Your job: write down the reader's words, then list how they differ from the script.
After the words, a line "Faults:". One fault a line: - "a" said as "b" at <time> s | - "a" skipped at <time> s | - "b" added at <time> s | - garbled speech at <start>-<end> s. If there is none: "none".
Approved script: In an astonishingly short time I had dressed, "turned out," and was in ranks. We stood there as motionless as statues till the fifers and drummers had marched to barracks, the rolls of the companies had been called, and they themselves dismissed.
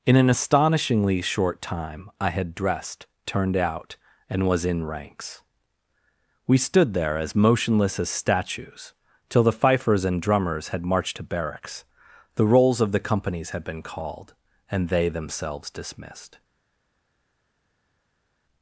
In an astonishingly short time I had dressed, "turned out," and was in ranks. We stood there as motionless as statues till the fifers and drummers had marched to barracks, the rolls of the companies had been called, and they themselves dismissed.
Faults:
none